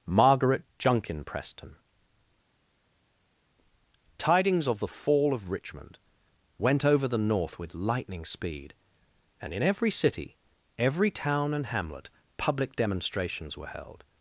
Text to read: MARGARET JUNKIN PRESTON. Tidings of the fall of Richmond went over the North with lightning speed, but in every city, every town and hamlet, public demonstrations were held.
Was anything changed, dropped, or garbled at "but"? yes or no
yes